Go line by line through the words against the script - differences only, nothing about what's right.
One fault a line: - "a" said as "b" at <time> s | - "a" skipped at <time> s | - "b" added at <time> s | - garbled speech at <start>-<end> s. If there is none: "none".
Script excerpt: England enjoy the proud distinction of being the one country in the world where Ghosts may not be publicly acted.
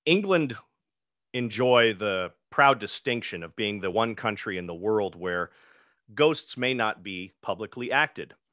none